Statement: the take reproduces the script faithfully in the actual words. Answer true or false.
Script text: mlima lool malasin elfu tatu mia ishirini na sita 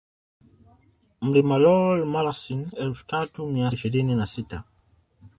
true